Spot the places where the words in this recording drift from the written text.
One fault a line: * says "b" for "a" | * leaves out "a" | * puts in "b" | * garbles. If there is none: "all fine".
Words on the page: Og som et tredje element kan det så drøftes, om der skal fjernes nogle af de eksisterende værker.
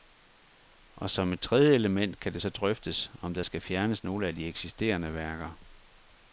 all fine